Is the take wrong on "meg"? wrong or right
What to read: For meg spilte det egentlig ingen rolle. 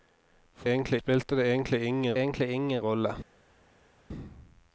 wrong